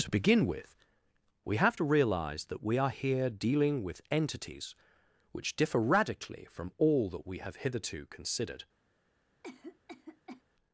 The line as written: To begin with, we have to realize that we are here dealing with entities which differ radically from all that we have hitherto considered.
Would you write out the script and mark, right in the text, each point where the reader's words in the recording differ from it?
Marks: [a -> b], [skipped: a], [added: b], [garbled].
To begin with, we have to realize that we are here dealing with entities which differ radically from all that we have hitherto considered.